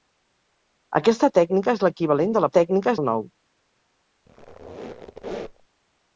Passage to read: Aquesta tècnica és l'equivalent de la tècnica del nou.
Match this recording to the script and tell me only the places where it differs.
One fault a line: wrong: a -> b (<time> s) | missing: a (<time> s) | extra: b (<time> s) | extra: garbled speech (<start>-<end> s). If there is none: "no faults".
no faults